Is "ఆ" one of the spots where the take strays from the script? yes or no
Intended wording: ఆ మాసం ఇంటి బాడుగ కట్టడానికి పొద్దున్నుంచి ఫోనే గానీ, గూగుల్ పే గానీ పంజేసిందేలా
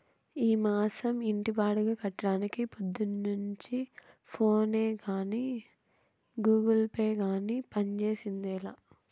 yes